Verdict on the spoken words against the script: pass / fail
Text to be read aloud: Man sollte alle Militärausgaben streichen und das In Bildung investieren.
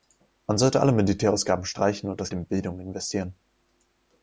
pass